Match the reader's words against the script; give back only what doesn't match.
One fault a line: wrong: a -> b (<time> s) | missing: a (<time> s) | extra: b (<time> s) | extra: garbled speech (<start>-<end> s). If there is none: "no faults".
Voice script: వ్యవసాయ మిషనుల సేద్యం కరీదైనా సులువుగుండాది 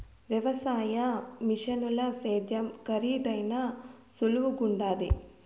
no faults